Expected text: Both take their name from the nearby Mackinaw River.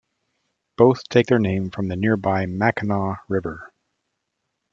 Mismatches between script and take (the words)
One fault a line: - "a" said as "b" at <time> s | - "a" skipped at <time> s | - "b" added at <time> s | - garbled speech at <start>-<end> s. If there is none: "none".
none